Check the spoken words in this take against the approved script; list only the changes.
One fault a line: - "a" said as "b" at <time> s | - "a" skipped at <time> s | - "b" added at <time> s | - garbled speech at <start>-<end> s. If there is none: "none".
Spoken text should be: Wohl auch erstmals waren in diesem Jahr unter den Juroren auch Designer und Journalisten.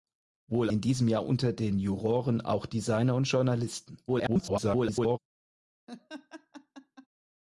- "auch erstmals waren" skipped at 0.7 s
- garbled speech at 4.1-5.2 s